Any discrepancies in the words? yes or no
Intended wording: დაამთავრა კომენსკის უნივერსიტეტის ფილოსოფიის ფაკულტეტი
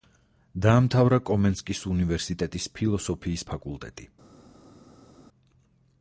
no